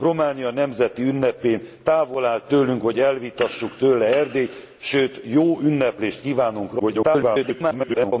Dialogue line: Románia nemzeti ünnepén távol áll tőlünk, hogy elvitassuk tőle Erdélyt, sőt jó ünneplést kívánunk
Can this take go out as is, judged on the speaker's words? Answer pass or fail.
fail